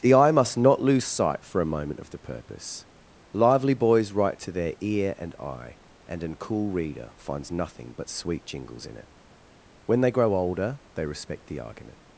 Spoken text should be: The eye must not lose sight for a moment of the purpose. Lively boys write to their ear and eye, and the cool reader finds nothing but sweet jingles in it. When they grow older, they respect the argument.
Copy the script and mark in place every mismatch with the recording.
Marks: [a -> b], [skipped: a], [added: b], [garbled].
The eye must not lose sight for a moment of the purpose. Lively boys write to their ear and eye, and [the -> an] cool reader finds nothing but sweet jingles in it. When they grow older, they respect the argument.